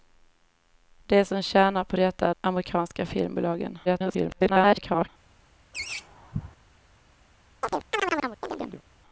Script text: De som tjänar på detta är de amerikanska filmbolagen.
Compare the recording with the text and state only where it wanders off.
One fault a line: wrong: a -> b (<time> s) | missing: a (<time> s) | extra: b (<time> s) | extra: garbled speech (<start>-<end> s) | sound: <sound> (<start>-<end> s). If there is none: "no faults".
missing: de (2.3 s)
extra: garbled speech (3.9-5.1 s)
sound: laugh (5.7-6.6 s)
sound: chirp (7.6-8.8 s)